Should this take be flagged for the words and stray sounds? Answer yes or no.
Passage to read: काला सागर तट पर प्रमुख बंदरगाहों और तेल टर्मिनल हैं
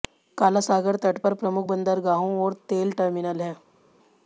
no